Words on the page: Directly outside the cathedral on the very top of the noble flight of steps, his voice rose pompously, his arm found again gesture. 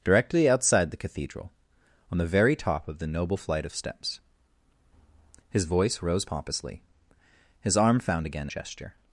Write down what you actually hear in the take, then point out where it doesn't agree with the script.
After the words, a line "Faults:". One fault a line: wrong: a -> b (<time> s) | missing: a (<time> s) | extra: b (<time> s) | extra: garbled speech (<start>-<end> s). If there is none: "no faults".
Directly outside the cathedral on the very top of the noble flight of steps, his voice rose pompously, his arm found again gesture.
Faults:
no faults